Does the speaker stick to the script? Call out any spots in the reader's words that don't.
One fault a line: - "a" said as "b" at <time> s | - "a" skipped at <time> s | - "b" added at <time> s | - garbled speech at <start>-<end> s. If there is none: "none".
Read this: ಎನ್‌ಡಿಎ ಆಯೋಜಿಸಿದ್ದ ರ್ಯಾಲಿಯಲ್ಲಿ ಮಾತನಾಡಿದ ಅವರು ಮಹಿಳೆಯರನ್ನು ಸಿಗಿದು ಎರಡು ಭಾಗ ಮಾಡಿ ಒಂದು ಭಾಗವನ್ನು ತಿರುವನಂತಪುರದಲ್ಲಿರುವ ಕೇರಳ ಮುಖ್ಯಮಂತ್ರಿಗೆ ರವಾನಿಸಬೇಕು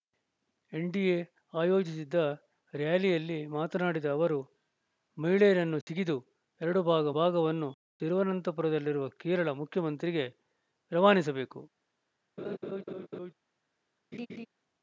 - "ಮಾಡಿ ಒಂದು" skipped at 7.1 s